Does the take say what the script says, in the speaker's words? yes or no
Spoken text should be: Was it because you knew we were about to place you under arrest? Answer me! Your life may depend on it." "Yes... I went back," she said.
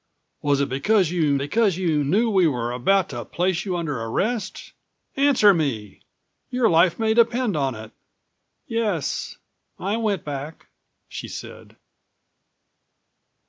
no